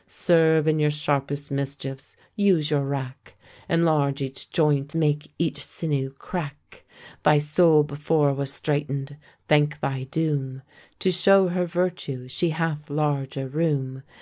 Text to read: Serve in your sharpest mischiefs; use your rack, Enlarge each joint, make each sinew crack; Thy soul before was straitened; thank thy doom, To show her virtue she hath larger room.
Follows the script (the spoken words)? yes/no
yes